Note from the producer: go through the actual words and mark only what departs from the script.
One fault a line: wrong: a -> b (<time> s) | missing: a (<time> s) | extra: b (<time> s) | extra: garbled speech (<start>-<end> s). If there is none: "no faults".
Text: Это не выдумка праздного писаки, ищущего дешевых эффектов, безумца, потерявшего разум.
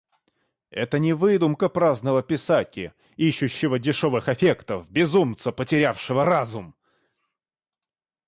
no faults